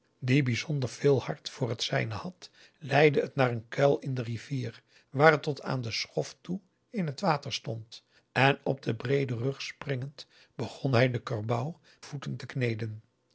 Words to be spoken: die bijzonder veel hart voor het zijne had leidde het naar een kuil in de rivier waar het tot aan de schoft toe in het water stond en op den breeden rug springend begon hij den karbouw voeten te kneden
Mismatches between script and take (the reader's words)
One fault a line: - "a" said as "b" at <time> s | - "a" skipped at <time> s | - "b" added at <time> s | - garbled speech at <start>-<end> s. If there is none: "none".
none